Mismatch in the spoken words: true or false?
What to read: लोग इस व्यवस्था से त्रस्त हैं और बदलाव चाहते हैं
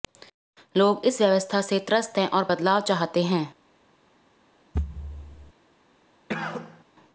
false